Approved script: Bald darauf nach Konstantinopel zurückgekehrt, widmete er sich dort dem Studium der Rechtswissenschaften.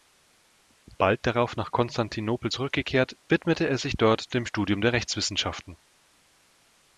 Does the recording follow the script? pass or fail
pass